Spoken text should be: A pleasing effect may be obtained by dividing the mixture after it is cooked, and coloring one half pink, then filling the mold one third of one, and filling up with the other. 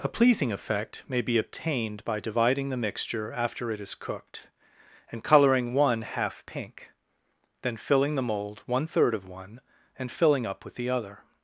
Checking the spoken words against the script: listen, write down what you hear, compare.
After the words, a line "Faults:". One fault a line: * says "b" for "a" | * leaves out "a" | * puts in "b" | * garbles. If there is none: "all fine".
A pleasing effect may be obtained by dividing the mixture after it is cooked, and coloring one half pink, then filling the mold one third of one, and filling up with the other.
Faults:
all fine